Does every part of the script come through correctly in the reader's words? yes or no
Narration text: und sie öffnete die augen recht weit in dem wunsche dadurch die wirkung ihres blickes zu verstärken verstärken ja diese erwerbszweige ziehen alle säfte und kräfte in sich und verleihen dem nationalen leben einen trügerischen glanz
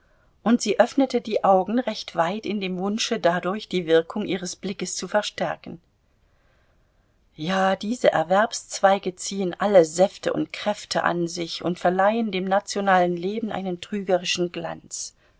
no